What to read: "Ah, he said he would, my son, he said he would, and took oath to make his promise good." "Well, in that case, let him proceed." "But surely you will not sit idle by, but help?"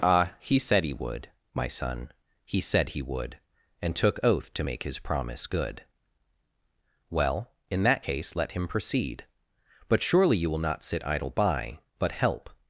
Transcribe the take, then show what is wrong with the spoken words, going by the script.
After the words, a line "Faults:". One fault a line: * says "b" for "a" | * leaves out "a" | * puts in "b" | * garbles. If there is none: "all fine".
"Ah, he said he would, my son, he said he would, and took oath to make his promise good." "Well, in that case, let him proceed." "But surely you will not sit idle by, but help?"
Faults:
all fine